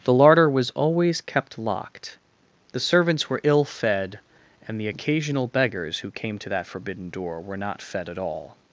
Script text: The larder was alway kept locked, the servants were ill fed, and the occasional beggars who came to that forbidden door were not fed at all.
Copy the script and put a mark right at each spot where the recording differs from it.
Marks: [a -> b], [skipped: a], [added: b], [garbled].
The larder was [alway -> always] kept locked, the servants were ill fed, and the occasional beggars who came to that forbidden door were not fed at all.